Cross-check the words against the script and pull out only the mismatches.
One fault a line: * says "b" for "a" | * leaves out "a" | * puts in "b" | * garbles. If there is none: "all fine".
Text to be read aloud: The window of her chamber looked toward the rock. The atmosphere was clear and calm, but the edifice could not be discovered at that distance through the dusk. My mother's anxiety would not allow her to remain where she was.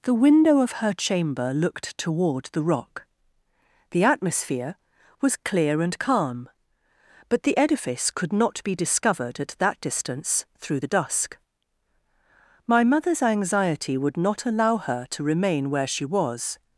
all fine